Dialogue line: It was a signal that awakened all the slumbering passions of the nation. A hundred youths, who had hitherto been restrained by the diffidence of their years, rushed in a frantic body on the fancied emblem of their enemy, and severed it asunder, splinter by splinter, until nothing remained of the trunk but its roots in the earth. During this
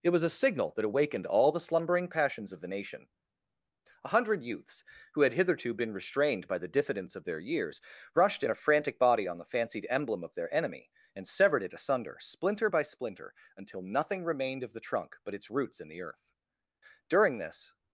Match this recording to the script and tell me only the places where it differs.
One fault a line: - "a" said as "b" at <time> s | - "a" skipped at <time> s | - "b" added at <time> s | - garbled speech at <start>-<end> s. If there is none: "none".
none